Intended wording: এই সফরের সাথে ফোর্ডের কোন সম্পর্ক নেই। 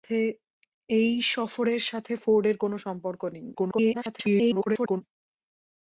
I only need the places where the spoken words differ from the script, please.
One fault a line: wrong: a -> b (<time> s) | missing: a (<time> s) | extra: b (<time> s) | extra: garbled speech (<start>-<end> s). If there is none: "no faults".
extra: garbled speech (3.5-5.0 s)